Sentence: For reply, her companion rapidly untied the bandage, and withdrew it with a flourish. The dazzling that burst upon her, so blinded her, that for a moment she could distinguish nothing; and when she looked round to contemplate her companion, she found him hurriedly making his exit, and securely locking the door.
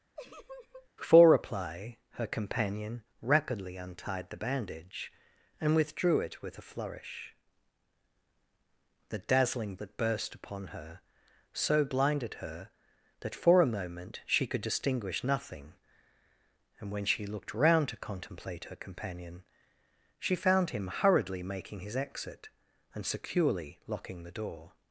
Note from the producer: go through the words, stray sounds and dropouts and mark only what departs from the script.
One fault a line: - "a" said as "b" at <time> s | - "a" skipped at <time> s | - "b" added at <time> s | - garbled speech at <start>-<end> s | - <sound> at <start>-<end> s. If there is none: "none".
- laugh at 0.2-0.9 s